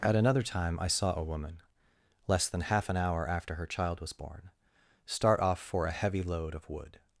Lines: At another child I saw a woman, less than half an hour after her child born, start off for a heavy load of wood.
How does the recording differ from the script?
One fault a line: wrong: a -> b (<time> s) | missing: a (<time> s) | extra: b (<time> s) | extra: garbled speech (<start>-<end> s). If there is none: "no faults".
wrong: child -> time (0.4 s)
extra: was (4.0 s)